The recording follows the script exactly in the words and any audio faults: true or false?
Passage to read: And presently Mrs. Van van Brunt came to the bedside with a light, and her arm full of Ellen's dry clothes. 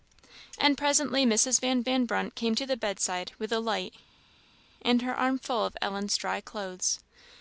true